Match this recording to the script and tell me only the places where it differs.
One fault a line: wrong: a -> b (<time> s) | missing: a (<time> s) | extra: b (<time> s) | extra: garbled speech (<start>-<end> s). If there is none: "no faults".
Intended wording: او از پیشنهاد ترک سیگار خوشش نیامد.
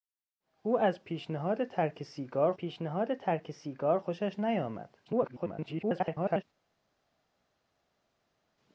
extra: پیشنهاد ترک سیگار (2.6 s)
extra: garbled speech (5.1-6.4 s)